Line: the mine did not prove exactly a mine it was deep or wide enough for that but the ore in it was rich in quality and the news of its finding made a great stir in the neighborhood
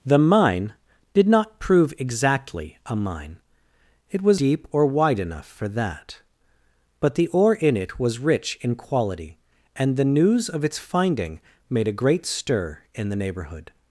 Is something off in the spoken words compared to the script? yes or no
no